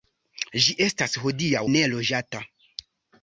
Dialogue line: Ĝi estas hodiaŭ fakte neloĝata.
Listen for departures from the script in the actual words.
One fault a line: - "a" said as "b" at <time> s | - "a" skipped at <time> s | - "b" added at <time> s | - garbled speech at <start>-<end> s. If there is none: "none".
- "fakte" skipped at 1.6 s